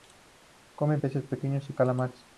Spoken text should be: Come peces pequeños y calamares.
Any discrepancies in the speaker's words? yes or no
no